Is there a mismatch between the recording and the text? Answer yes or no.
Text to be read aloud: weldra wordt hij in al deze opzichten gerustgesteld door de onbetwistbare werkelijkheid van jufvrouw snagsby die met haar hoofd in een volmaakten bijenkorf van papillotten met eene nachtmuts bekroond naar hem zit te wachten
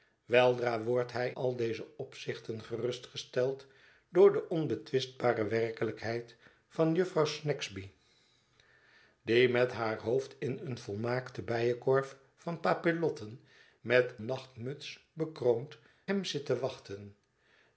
yes